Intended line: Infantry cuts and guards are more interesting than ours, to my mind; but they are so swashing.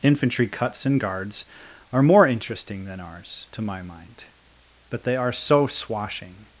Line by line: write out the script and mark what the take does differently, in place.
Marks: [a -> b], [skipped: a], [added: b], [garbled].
Infantry cuts and guards are more interesting than ours, to my mind; but they are so swashing.